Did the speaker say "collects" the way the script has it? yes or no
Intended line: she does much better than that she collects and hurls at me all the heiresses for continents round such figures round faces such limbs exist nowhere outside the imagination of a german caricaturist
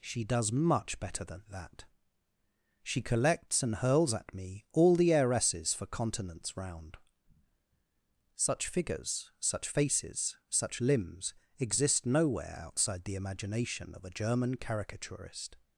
yes